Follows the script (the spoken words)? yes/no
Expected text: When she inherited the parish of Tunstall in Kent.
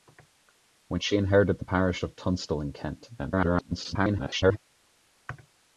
no